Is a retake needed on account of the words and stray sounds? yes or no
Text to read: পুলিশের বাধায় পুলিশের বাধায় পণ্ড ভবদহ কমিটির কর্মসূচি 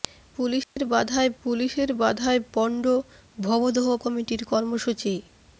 yes